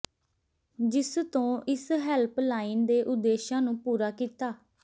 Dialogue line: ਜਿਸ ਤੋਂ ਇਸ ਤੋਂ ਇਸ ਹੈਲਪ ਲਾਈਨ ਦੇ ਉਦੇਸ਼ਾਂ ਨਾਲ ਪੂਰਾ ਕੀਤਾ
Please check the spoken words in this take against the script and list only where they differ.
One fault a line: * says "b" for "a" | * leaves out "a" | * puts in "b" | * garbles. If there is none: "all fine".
* leaves out "ਤੋਂ ਇਸ"
* says "ਨੂੰ" for "ਨਾਲ"